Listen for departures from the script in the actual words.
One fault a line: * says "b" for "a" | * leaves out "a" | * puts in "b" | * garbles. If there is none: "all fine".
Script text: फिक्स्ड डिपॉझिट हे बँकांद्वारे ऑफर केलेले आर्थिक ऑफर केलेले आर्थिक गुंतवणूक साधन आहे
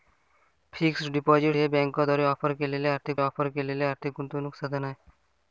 all fine